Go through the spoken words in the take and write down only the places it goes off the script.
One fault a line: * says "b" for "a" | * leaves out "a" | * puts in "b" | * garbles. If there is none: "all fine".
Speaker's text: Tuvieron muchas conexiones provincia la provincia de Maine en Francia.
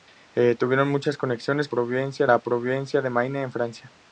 all fine